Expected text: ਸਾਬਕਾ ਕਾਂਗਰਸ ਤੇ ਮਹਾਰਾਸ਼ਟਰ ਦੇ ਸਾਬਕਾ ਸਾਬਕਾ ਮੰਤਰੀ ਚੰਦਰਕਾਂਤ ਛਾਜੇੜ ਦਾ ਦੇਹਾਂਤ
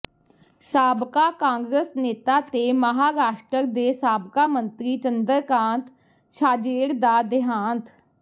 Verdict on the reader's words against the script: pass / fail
fail